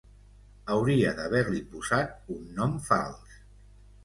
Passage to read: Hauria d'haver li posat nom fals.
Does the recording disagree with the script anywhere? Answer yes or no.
yes